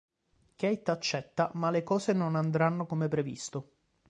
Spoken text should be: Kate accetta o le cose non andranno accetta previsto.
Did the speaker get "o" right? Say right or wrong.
wrong